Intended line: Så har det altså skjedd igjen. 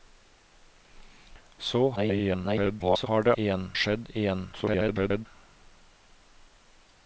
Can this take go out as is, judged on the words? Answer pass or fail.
fail